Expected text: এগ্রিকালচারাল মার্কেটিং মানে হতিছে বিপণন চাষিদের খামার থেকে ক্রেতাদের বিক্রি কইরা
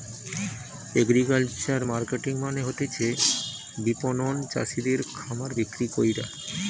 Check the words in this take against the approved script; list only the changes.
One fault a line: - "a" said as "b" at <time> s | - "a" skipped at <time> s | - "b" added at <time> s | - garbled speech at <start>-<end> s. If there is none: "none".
- "থেকে ক্রেতাদের" skipped at 5.5 s